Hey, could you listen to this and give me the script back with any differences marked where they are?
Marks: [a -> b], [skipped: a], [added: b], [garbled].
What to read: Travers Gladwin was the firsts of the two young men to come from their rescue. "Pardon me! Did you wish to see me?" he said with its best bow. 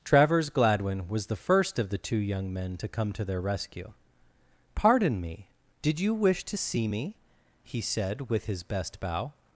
Travers Gladwin was the [firsts -> first] of the two young men to come [from -> to] their rescue. "Pardon me! Did you wish to see me?" he said with [its -> his] best bow.